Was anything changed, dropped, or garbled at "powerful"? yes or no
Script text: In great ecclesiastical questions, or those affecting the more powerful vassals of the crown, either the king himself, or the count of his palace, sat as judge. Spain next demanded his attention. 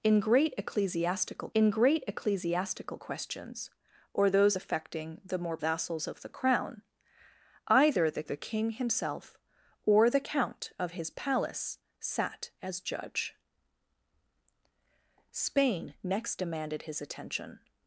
yes